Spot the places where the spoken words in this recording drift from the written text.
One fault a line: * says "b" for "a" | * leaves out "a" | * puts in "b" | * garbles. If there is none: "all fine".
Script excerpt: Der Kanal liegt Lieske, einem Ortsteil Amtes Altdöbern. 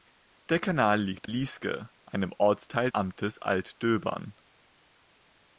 all fine